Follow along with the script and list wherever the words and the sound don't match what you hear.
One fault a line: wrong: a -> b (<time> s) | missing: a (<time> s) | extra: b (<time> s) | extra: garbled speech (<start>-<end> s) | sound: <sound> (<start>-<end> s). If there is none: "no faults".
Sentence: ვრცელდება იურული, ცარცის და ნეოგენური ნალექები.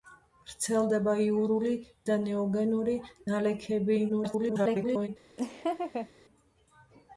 missing: ცარცის (1.7 s)
extra: garbled speech (4.1-5.1 s)
sound: laugh (5.4-6.1 s)